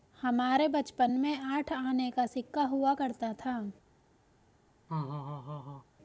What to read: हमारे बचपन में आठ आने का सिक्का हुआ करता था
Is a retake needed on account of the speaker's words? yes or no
no